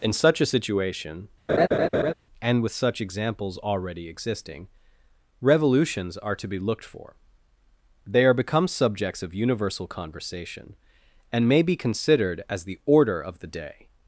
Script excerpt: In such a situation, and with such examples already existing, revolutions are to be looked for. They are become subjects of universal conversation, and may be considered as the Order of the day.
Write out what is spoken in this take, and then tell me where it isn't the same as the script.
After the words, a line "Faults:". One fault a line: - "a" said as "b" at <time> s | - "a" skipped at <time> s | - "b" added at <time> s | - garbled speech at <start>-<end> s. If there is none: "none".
In such a situation, and with such examples already existing, revolutions are to be looked for. They are become subjects of universal conversation, and may be considered as the Order of the day.
Faults:
none